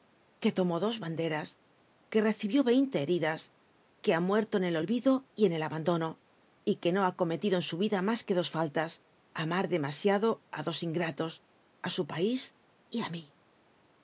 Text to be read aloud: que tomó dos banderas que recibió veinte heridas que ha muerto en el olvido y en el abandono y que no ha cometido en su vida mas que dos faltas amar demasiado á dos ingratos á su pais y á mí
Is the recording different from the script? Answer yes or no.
no